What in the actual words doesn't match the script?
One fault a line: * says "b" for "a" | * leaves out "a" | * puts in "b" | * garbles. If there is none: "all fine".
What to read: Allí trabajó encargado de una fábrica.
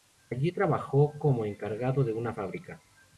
* puts in "como"